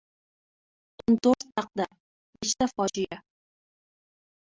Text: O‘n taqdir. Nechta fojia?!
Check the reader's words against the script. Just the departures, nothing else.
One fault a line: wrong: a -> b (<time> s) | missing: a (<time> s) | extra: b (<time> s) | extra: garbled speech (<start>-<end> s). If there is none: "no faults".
extra: to‘rt (1.3 s)